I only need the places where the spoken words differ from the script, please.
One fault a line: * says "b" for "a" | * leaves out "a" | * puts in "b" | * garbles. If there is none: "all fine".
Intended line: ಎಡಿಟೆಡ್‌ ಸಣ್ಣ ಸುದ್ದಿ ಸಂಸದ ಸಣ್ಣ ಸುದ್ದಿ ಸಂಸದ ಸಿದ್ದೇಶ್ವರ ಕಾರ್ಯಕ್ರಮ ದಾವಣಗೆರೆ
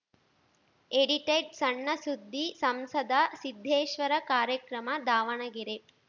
* leaves out "ಸಣ್ಣ ಸುದ್ದಿ ಸಂಸದ"